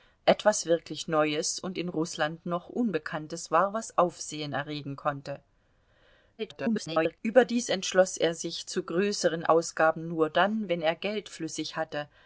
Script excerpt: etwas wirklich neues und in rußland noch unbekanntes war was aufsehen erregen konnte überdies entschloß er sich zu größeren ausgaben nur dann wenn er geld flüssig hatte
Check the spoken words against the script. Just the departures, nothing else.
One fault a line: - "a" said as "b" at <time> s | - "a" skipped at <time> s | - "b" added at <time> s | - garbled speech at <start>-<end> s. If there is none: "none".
- garbled speech at 6.4-7.2 s